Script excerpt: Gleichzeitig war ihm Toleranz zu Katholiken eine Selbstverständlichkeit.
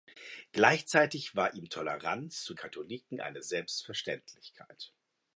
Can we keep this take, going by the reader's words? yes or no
yes